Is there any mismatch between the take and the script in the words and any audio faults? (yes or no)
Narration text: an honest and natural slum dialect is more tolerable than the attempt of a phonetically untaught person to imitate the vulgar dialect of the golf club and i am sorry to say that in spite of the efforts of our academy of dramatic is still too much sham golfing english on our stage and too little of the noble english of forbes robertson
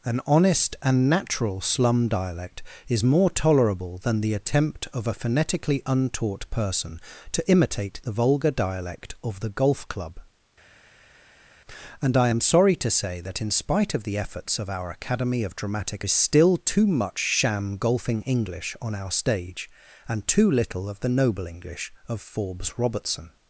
no